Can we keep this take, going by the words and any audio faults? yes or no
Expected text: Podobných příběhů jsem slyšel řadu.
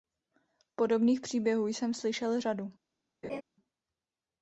no